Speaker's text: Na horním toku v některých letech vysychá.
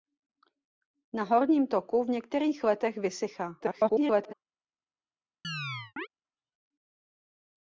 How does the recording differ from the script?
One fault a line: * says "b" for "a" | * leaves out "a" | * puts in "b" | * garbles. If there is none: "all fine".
* garbles